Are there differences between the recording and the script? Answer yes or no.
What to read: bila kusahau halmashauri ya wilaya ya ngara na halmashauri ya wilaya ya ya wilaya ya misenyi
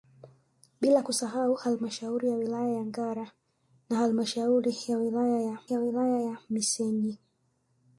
no